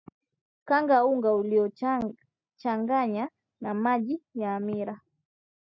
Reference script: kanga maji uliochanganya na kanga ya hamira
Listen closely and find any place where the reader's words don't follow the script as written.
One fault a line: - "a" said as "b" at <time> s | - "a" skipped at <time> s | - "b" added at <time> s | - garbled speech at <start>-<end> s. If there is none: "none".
- "maji" said as "unga" at 1.1 s
- "kanga" said as "maji" at 3.7 s